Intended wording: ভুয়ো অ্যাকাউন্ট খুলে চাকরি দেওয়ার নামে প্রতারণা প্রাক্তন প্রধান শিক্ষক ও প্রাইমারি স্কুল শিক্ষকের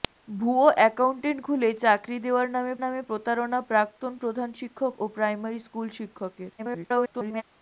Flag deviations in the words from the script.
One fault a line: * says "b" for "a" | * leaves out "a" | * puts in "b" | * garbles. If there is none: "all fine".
* puts in "নামে"
* garbles